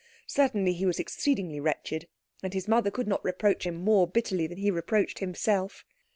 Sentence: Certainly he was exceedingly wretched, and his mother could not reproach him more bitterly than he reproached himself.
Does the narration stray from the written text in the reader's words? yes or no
no